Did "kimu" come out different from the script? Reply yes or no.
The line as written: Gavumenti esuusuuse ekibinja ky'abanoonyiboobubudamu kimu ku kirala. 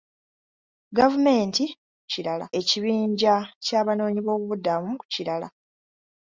yes